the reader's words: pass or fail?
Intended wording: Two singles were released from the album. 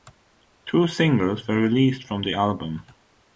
pass